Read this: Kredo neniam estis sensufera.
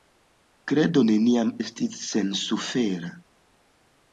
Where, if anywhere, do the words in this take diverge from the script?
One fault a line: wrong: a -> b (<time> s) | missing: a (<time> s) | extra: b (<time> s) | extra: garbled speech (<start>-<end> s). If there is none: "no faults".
no faults